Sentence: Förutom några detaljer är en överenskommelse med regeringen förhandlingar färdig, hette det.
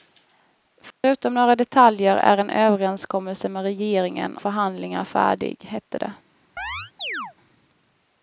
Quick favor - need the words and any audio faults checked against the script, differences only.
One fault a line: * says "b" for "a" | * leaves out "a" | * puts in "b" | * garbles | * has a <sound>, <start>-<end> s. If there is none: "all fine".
* has a dropout, 0.9-1.0 s
* has a chirp, 6.6-7.3 s